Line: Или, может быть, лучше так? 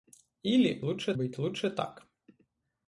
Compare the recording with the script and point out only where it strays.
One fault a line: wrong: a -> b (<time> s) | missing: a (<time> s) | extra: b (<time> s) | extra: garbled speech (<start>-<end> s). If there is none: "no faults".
wrong: может -> лучше (0.8 s)